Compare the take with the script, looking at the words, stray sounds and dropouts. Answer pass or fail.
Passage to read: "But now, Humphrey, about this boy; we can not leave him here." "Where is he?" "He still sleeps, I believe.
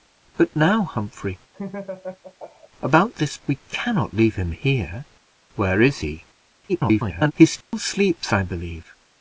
fail